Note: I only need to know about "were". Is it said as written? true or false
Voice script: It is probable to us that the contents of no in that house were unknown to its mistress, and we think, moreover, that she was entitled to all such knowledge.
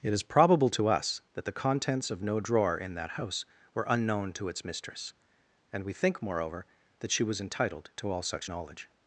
true